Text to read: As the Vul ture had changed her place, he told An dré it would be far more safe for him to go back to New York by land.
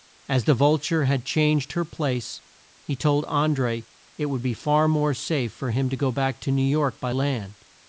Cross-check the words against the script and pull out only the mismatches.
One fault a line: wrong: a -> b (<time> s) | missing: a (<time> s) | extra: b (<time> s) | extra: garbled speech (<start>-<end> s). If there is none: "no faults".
no faults